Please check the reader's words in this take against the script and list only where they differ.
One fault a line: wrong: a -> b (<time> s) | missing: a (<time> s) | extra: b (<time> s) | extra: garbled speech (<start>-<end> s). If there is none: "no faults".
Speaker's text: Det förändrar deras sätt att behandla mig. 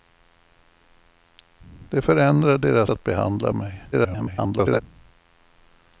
missing: sätt (2.9 s)
extra: garbled speech (3.9-4.8 s)